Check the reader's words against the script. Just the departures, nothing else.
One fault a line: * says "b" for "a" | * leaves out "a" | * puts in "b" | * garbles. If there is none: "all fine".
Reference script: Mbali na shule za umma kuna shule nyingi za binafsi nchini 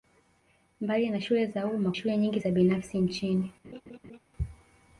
* leaves out "kuna"